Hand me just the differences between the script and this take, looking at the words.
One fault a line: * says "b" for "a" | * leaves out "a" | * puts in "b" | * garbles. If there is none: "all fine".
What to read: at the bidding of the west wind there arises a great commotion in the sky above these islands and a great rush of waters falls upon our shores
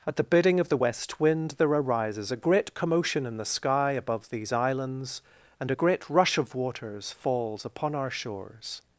all fine